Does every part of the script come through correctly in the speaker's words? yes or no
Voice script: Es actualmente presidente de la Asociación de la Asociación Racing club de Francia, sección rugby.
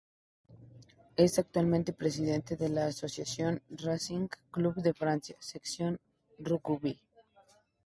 no